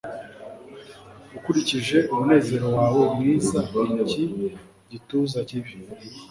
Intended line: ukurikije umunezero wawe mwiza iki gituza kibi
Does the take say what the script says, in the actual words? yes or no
yes